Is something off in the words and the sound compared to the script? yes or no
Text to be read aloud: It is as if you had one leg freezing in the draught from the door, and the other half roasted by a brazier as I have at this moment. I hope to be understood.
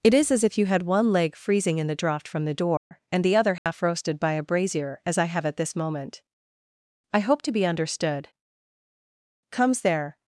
yes